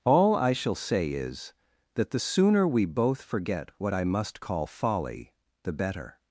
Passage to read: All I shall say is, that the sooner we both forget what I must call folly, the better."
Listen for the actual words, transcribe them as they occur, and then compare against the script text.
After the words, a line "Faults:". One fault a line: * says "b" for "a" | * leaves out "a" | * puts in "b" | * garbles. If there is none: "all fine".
All I shall say is, that the sooner we both forget what I must call folly, the better."
Faults:
all fine